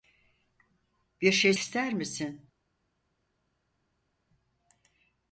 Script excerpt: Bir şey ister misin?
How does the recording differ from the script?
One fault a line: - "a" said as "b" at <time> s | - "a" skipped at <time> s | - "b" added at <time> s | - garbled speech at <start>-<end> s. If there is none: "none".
none